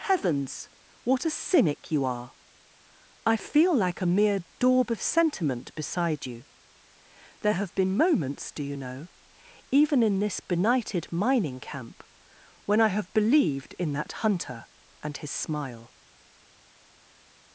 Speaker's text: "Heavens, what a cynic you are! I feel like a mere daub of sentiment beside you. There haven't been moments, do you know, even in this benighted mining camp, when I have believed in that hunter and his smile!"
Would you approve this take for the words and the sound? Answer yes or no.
no